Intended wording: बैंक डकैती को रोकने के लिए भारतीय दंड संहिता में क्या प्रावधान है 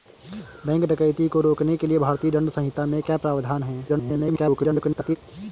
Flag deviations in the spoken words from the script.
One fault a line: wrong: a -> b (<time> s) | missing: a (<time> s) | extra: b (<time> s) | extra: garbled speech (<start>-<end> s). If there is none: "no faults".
extra: garbled speech (3.9-5.2 s)